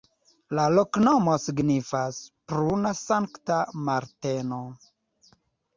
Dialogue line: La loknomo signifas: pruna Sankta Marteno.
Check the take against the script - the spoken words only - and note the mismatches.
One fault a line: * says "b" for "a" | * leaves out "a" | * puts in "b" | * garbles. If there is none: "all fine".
all fine